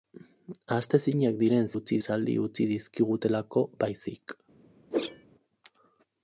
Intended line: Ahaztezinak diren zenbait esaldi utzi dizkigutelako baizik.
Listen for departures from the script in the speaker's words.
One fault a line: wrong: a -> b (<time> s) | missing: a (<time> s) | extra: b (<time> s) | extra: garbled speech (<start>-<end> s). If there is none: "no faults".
wrong: zenbait -> utzi (1.7 s)